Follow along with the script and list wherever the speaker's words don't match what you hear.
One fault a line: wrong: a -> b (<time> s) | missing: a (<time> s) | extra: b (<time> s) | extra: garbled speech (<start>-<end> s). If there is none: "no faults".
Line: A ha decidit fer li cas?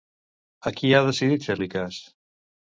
extra: qui (0.8 s)